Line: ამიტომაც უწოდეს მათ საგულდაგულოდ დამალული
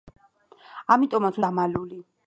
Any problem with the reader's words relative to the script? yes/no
yes